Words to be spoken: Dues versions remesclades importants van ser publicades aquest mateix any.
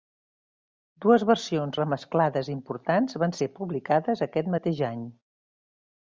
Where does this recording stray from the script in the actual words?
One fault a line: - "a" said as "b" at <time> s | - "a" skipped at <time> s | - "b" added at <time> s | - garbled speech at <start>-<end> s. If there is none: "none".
none